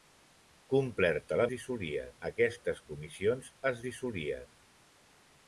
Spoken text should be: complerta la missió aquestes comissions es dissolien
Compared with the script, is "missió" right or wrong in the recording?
wrong